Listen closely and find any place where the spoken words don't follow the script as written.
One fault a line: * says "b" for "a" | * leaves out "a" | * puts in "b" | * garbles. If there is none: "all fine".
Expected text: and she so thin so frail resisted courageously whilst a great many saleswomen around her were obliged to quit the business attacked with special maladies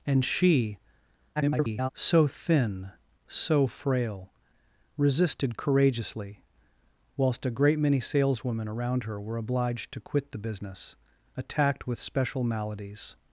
* garbles